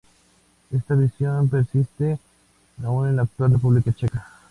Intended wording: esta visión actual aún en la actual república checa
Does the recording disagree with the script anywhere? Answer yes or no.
yes